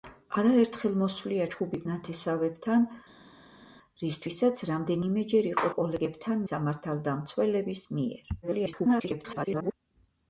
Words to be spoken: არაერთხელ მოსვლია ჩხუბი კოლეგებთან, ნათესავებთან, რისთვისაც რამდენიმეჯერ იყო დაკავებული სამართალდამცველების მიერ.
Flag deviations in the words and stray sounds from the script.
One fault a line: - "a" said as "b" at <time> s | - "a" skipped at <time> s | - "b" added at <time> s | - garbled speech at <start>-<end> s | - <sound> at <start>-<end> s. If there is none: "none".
- "კოლეგებთან" skipped at 1.8 s
- "დაკავებული" said as "კოლეგებთან" at 5.8 s
- garbled speech at 8.4-9.7 s